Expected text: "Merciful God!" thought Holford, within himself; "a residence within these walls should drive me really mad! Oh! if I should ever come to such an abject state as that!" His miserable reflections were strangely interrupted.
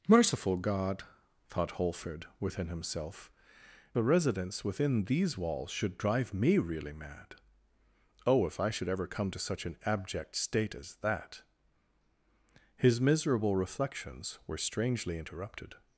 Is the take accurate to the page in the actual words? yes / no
yes